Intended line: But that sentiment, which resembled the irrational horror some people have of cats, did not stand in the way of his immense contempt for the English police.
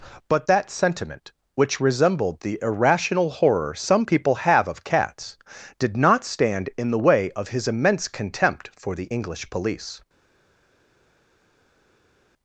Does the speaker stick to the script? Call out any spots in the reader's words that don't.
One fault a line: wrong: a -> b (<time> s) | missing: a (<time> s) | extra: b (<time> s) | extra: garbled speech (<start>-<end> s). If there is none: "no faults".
no faults